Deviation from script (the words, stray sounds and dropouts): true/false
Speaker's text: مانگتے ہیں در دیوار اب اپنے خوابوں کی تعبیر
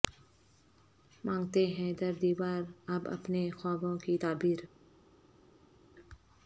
false